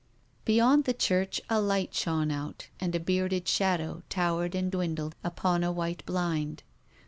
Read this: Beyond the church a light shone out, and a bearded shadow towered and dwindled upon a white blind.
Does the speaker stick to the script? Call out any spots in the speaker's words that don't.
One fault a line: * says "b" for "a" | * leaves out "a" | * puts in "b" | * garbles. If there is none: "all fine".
all fine